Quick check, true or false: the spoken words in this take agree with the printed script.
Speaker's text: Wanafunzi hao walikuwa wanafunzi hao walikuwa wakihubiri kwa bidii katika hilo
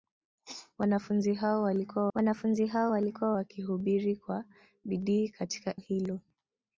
true